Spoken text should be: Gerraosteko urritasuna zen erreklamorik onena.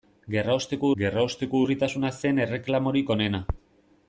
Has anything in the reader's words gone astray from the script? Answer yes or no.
yes